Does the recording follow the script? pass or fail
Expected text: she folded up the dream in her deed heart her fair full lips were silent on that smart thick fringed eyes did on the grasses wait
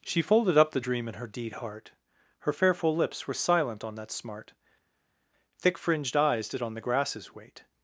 pass